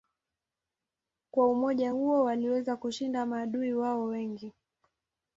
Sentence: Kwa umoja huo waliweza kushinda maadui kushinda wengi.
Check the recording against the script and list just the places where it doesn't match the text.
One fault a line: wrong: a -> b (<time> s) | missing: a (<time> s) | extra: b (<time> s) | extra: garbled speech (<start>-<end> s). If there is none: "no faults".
wrong: kushinda -> wao (3.7 s)